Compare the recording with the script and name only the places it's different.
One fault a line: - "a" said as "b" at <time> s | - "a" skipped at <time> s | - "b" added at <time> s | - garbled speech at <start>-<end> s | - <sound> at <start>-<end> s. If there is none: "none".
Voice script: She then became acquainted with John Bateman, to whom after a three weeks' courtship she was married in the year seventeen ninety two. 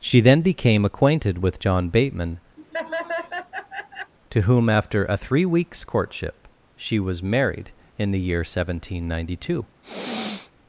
- laugh at 2.6-4.1 s
- sniff at 9.8-10.5 s